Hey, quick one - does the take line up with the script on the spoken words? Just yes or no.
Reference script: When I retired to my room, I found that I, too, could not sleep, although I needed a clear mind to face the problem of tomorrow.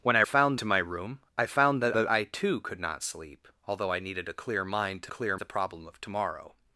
no